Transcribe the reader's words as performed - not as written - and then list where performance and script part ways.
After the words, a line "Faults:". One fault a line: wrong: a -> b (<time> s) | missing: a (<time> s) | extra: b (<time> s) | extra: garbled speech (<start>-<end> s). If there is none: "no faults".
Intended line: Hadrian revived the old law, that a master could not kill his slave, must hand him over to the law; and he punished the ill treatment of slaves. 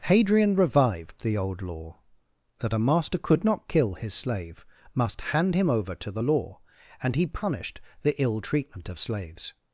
Hadrian revived the old law, that a master could not kill his slave, must hand him over to the law; and he punished the ill treatment of slaves.
Faults:
no faults